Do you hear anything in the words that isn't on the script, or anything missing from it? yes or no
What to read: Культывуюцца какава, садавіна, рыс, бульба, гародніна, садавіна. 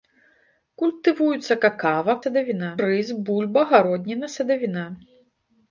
no